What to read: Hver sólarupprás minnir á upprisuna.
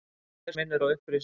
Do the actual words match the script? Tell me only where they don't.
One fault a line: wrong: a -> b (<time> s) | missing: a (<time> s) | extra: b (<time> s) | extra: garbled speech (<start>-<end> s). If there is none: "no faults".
missing: sólarupprás (0.6 s)